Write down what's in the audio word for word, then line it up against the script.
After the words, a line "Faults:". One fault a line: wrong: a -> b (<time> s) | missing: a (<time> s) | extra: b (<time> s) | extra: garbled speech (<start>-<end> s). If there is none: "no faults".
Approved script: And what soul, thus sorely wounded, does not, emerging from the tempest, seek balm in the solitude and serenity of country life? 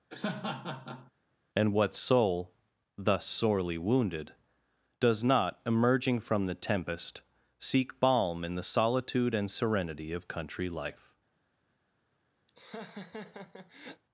And what soul, thus sorely wounded, does not, emerging from the tempest, seek balm in the solitude and serenity of country life?
Faults:
no faults